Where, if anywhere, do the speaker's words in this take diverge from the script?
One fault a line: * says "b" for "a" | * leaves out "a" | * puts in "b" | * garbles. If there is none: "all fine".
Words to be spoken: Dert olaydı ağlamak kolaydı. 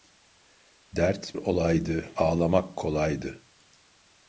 all fine